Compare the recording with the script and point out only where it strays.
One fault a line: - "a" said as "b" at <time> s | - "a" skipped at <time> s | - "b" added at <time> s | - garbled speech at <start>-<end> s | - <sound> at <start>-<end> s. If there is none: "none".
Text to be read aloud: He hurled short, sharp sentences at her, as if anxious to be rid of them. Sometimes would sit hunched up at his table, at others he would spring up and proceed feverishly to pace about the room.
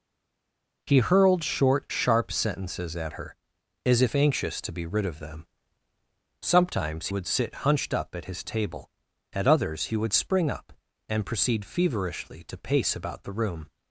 none